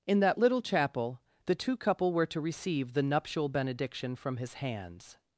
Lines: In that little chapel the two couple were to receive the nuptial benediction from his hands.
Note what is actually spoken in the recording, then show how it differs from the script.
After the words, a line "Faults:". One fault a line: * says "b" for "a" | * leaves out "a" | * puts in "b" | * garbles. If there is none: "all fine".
In that little chapel the two couple were to receive the nuptial benediction from his hands.
Faults:
all fine